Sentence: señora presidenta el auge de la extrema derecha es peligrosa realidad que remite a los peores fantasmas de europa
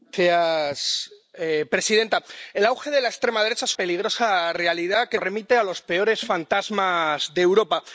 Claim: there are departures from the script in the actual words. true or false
false